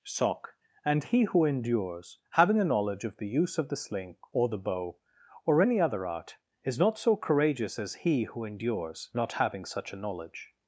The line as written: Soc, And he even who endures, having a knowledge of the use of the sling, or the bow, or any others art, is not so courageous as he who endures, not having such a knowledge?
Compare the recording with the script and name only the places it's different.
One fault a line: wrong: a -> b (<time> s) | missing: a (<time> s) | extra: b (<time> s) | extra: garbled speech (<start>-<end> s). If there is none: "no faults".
missing: even (1.2 s)
wrong: others -> other (5.8 s)